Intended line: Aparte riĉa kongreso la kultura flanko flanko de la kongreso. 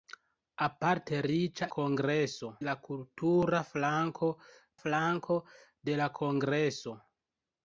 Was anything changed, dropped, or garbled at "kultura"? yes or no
no